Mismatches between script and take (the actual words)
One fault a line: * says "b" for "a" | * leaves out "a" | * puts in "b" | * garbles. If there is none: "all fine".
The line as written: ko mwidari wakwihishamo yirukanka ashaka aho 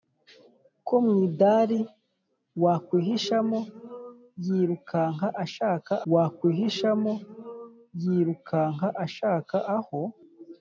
* puts in "wakwihishamo yirukanka ashaka"